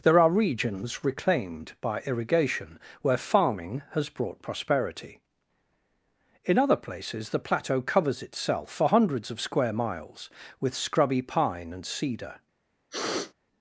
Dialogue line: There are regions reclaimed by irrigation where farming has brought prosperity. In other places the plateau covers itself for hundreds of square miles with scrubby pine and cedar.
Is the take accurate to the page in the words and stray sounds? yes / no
no